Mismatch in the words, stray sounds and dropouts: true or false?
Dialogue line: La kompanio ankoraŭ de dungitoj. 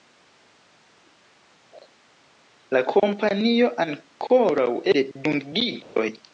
true